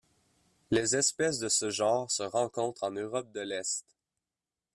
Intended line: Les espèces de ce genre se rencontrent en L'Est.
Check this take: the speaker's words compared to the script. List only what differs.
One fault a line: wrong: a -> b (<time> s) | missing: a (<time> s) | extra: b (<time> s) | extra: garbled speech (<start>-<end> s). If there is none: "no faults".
extra: Europe de (2.9 s)